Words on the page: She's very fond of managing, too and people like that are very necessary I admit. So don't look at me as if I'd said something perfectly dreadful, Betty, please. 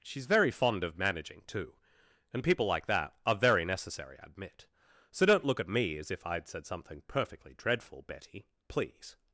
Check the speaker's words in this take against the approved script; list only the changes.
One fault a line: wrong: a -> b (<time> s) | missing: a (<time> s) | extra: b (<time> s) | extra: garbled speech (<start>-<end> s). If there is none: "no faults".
no faults